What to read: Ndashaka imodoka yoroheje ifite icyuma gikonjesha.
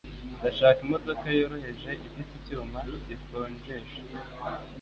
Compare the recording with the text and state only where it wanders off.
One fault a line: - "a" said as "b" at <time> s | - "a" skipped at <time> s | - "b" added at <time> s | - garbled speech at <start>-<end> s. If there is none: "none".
none